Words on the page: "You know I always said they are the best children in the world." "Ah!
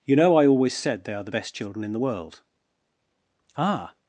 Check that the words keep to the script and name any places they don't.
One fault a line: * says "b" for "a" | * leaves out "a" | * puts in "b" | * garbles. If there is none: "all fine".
all fine